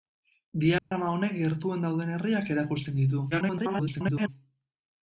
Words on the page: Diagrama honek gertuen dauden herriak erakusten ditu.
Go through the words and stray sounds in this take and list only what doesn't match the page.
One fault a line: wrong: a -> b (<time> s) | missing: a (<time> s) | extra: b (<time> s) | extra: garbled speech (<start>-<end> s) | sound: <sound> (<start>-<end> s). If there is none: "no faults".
sound: dropout (0.8-0.9 s)
extra: garbled speech (3.3-4.3 s)